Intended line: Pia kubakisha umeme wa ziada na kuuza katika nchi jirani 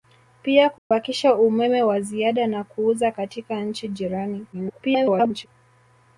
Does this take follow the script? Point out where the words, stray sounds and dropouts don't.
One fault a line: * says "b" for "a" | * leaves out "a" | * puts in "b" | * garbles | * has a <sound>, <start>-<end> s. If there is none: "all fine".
* has a dropout, 0.8-0.9 s
* garbles